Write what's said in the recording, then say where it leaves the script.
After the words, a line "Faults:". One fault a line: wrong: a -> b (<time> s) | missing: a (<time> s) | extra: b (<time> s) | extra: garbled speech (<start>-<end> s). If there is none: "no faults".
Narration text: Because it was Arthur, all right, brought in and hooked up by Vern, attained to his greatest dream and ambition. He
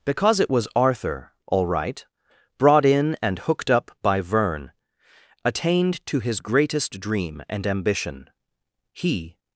Because it was Arthur, all right, brought in and hooked up by Vern, attained to his greatest dream and ambition. He
Faults:
no faults